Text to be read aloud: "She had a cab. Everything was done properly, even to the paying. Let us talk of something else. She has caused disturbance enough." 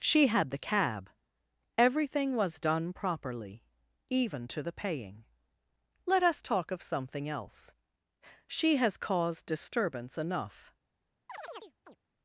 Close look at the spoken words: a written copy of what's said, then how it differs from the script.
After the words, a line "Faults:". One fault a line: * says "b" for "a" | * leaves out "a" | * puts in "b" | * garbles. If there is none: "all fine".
"She had the cab. Everything was done properly, even to the paying. Let us talk of something else. She has caused disturbance enough."
Faults:
* says "the" for "a"